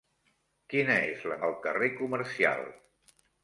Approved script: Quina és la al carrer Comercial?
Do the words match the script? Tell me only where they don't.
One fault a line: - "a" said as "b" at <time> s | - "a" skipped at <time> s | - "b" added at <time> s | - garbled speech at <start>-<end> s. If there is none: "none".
none